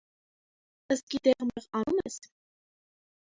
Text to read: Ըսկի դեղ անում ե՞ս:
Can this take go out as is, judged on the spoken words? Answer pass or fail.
fail